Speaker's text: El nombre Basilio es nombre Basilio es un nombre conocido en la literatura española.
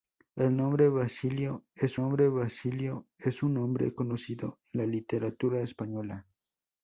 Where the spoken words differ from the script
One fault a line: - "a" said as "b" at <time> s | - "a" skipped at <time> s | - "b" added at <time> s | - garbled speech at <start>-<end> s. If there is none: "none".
none